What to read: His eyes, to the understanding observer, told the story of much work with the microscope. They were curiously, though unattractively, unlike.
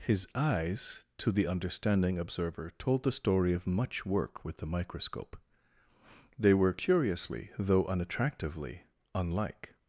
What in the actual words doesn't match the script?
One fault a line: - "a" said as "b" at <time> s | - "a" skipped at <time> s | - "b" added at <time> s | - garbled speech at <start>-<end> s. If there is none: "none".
none